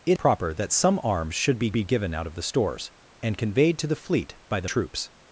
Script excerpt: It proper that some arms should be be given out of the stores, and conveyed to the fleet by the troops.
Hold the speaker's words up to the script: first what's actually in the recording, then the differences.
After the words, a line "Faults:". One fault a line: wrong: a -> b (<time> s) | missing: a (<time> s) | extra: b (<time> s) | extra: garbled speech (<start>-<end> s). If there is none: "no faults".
It proper that some arms should be be given out of the stores, and conveyed to the fleet by the troops.
Faults:
no faults